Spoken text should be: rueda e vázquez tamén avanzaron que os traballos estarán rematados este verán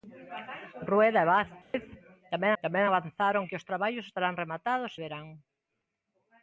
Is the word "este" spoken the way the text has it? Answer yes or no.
no